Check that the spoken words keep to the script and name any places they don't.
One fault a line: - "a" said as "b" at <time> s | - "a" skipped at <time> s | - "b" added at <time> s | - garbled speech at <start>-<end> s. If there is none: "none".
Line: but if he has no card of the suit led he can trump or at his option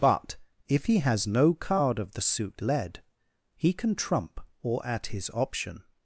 none